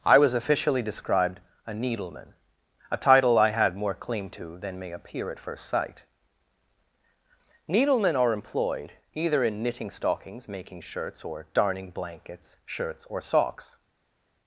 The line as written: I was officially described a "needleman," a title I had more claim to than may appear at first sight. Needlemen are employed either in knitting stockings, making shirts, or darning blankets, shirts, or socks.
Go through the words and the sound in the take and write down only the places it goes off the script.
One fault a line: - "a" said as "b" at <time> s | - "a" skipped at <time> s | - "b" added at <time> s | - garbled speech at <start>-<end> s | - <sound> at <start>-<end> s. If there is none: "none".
none